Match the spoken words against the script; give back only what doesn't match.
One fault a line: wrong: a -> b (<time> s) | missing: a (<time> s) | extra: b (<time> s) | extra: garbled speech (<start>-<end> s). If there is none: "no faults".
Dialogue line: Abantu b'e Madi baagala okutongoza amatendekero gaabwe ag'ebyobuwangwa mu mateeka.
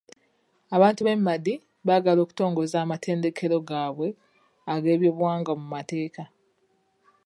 no faults